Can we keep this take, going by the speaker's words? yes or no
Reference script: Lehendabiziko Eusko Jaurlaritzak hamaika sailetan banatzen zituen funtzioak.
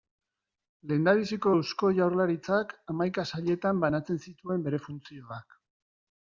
no